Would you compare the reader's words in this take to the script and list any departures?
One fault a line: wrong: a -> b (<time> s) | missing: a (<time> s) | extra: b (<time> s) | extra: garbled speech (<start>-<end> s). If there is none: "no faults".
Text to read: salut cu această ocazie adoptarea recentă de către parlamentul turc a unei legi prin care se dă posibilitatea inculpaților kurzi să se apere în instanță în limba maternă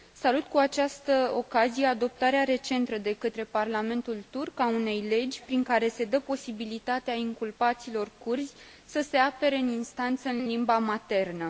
extra: în (10.4 s)